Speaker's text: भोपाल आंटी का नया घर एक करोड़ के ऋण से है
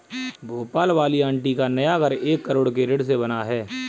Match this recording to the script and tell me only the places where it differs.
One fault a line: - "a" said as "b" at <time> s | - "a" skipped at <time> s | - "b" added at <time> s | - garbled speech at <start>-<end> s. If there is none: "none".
- "वाली" added at 0.9 s
- "बना" added at 3.2 s